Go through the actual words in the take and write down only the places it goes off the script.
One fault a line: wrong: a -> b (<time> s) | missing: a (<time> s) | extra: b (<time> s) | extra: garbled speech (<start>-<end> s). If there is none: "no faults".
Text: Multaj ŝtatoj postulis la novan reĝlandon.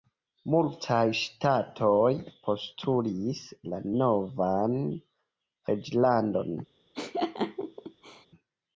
no faults